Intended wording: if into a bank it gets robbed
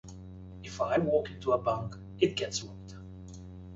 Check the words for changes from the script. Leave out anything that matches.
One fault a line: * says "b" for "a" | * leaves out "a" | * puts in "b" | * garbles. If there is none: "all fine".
* puts in "i walk"